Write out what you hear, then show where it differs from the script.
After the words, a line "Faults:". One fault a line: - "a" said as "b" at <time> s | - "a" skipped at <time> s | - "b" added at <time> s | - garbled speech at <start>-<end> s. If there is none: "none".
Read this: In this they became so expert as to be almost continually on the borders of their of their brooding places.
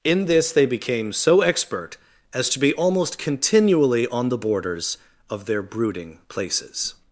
In this they became so expert as to be almost continually on the borders of their brooding places.
Faults:
- "of their" skipped at 5.6 s